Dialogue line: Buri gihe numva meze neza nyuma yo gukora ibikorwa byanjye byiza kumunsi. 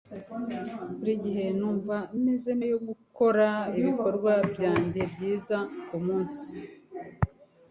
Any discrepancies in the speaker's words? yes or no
yes